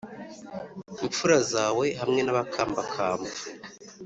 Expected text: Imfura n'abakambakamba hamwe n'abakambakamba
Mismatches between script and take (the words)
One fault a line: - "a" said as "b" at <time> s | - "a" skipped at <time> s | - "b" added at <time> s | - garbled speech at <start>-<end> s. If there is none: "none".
- "n'abakambakamba" said as "zawe" at 1.5 s